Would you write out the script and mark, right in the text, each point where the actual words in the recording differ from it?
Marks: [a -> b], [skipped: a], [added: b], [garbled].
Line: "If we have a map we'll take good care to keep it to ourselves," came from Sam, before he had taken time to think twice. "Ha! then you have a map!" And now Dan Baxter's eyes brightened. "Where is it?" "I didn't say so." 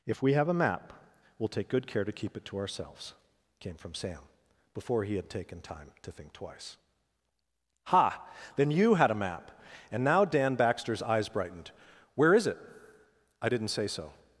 "If we have a map we'll take good care to keep it to ourselves," came from Sam, before he had taken time to think twice. "Ha! then you [have -> had] a map!" And now Dan Baxter's eyes brightened. "Where is it?" "I didn't say so."